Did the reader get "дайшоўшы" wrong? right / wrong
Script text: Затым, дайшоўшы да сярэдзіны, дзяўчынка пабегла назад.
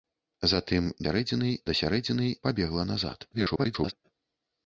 wrong